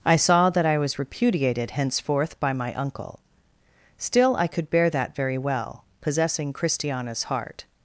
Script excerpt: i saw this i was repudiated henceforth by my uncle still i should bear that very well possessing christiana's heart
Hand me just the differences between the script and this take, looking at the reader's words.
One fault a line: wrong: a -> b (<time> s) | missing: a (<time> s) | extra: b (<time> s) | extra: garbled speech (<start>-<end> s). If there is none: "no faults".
wrong: this -> that (0.5 s)
wrong: should -> could (4.5 s)